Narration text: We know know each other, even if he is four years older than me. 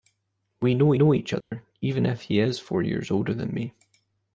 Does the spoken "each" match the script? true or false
true